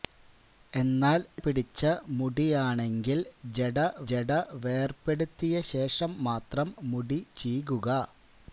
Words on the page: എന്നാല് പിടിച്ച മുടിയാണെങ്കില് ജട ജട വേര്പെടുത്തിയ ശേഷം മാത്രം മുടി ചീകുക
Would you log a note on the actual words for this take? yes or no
no